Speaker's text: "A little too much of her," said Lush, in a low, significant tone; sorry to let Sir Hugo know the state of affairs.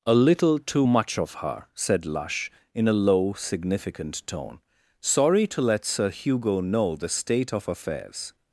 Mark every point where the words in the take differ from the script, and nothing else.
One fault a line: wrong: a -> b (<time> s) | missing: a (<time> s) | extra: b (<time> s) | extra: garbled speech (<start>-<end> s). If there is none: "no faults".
no faults